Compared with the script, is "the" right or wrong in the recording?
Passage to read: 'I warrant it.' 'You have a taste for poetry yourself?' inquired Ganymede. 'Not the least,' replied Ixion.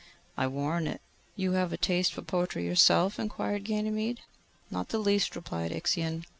right